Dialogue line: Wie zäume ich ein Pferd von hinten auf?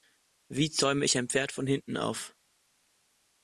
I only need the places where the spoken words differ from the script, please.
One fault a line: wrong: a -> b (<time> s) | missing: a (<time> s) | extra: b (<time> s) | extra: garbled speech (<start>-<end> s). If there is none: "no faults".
no faults